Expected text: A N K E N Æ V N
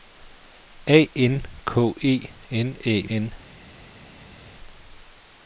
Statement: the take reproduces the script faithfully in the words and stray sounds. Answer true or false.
false